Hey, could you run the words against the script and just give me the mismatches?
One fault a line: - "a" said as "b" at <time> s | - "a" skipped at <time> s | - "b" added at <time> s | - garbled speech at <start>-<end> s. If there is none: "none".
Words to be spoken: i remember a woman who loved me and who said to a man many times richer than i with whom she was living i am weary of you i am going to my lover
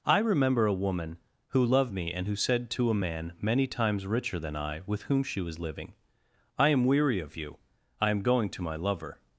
none